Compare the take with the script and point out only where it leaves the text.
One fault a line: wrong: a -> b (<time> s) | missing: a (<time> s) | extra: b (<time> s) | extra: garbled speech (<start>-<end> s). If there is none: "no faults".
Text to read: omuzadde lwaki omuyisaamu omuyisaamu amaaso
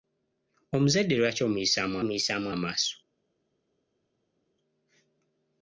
no faults